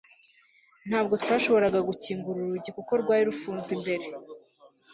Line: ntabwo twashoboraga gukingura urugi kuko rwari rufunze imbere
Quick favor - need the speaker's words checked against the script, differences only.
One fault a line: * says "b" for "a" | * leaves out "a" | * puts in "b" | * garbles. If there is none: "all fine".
all fine